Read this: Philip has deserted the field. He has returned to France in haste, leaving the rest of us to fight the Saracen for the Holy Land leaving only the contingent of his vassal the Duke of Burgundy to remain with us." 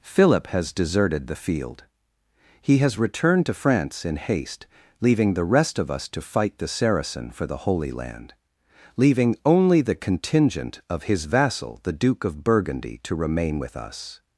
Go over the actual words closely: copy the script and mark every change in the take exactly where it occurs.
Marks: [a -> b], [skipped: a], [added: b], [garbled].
Philip has deserted the field. He has returned to France in haste, leaving the rest of us to fight the Saracen for the Holy Land leaving only the contingent of his vassal the Duke of Burgundy to remain with us."